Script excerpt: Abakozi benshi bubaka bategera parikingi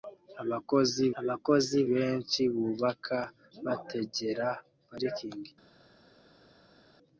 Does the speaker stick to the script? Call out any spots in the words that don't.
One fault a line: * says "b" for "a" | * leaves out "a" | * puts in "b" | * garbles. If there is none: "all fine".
* puts in "abakozi"